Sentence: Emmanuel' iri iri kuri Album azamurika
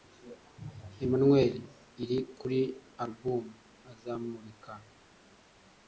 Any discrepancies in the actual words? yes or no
yes